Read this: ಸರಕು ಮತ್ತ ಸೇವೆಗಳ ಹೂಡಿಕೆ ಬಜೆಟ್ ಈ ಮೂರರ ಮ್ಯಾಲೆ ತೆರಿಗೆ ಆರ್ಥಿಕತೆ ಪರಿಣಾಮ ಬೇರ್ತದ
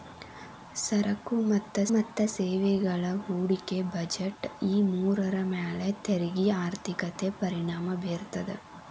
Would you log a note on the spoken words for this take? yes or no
yes